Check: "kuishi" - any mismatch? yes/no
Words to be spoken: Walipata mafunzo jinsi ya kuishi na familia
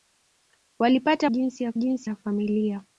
yes